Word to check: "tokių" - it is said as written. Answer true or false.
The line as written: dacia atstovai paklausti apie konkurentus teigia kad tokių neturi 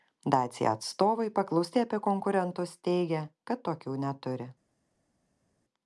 true